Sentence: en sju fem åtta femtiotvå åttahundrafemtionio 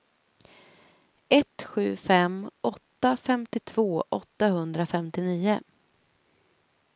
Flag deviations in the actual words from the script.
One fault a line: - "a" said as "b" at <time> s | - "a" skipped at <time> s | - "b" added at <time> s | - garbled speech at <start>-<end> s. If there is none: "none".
- "en" said as "ett" at 1.3 s